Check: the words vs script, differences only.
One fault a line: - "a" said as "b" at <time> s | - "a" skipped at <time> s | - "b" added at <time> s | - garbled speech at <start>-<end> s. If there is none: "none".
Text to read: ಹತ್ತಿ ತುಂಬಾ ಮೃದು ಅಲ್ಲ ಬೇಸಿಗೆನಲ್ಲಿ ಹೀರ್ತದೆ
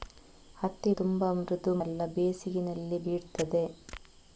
none